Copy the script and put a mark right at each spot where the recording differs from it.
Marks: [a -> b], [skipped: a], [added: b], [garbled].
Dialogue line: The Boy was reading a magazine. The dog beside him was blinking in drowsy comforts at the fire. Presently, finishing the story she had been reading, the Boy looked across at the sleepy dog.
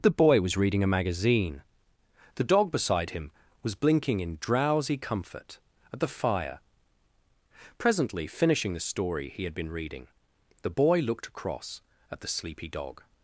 The Boy was reading a magazine. The dog beside him was blinking in drowsy [comforts -> comfort] at the fire. Presently, finishing the story [she -> he] had been reading, the Boy looked across at the sleepy dog.